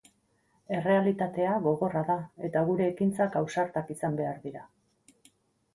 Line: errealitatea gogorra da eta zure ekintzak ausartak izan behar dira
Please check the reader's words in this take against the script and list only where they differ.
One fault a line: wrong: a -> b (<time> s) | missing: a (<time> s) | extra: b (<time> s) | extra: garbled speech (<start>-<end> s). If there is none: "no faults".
wrong: zure -> gure (2.7 s)